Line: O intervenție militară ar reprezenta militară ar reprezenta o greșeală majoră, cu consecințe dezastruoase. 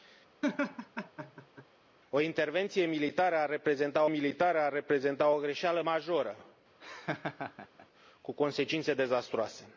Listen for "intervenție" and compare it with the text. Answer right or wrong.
right